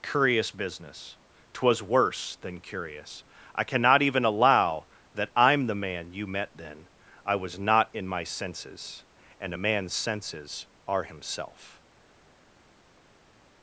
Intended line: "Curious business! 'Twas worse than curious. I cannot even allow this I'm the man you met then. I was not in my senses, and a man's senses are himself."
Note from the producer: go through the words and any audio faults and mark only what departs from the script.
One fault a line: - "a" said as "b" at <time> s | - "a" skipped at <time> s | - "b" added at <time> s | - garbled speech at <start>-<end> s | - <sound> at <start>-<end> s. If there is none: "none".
- "this" said as "that" at 5.1 s